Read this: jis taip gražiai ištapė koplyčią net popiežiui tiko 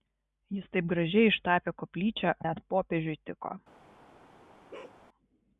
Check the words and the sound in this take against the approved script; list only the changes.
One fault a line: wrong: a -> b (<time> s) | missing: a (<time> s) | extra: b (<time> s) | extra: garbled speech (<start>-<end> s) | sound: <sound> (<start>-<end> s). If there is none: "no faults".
sound: bark (4.7-5.0 s)